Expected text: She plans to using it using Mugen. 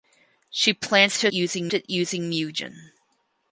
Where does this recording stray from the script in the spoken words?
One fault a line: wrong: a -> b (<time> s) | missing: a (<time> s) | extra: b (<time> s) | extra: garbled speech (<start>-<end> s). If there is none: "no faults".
no faults